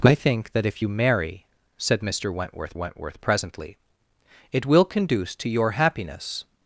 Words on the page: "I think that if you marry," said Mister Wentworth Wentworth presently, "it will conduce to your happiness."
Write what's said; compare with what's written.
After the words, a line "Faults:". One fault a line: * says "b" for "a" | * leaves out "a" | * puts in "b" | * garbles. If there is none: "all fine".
"I think that if you marry," said Mister Wentworth Wentworth presently, "it will conduce to your happiness."
Faults:
all fine